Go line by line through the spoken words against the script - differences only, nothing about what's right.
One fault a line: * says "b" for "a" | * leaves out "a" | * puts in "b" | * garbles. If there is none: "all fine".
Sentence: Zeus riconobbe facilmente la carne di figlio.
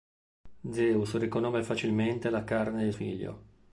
all fine